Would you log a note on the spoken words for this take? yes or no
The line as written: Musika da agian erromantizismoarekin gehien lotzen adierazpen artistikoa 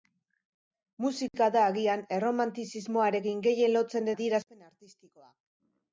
no